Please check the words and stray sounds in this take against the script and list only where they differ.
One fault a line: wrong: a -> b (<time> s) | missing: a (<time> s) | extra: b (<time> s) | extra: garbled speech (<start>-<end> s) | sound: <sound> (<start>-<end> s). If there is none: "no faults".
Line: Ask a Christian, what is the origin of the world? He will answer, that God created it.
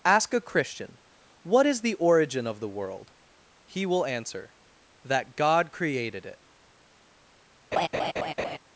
sound: laugh (7.7-8.6 s)